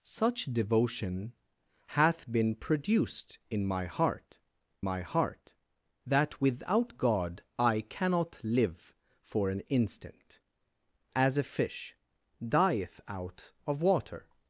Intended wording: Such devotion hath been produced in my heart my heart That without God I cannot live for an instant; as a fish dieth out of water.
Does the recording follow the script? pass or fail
pass